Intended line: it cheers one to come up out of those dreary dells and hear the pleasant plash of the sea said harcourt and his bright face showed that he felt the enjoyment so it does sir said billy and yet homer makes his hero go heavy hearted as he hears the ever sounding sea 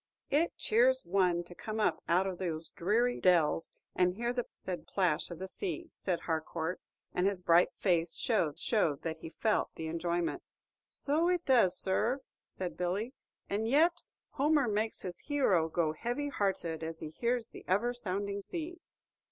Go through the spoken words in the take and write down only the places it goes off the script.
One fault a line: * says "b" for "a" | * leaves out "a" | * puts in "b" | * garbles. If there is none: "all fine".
* says "said" for "pleasant"
* puts in "showed"